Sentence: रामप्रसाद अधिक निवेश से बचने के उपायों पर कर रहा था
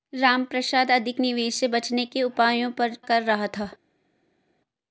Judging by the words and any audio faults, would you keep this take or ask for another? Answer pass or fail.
pass